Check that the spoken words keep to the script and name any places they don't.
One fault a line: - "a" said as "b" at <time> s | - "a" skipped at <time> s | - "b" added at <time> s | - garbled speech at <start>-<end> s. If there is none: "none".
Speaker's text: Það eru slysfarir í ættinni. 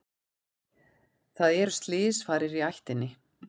none